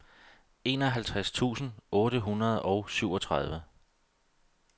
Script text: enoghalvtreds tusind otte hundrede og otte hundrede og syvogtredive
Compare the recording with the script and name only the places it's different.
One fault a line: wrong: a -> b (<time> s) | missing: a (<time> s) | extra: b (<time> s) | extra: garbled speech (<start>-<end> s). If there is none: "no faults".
missing: otte hundrede og (2.9 s)